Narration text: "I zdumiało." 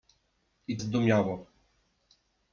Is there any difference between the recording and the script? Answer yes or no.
no